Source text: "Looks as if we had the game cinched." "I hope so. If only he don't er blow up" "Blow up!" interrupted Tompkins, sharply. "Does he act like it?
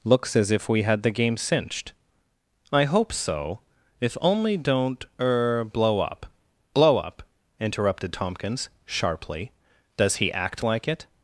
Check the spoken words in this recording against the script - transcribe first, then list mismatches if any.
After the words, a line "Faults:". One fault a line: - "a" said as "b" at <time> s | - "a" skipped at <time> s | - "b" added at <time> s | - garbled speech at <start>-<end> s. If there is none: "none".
"Looks as if we had the game cinched." "I hope so. If only don't er blow up" "Blow up!" interrupted Tompkins, sharply. "Does he act like it?
Faults:
- "he" skipped at 4.6 s